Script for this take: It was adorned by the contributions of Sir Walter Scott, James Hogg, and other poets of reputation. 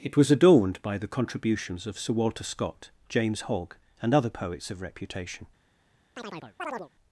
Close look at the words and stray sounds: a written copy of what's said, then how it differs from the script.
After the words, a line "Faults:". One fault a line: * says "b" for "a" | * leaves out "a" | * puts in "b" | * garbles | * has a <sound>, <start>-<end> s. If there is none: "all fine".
It was adorned by the contributions of Sir Walter Scott, James Hogg, and other poets of reputation.
Faults:
* has a chirp, 6.2-6.9 s